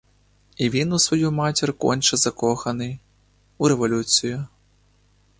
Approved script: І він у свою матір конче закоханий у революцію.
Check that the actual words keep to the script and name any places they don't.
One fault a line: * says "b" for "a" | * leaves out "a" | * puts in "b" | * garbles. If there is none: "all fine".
all fine